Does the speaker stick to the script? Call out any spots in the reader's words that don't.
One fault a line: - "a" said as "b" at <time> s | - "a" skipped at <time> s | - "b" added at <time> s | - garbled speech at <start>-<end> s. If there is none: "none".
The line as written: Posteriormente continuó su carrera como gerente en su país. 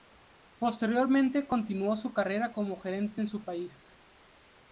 none